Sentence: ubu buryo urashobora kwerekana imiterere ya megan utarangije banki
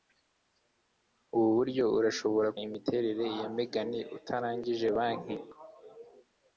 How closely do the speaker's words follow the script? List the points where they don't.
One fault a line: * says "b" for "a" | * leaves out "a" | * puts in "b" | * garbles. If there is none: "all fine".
* leaves out "kwerekana"